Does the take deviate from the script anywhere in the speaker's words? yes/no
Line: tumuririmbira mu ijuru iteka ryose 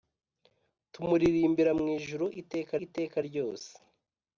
yes